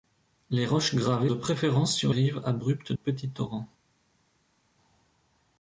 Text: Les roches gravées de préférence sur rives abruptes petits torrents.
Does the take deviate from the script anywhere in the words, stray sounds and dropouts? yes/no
no